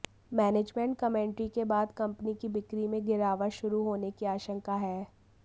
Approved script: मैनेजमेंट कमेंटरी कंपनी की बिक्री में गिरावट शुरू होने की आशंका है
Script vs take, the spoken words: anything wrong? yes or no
yes